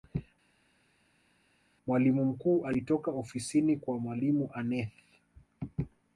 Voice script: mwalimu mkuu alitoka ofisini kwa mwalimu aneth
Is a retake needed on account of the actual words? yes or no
no